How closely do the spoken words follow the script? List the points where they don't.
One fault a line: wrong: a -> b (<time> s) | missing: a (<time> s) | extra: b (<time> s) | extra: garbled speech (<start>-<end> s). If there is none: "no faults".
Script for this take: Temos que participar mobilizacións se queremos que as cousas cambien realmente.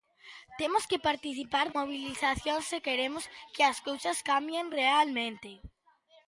no faults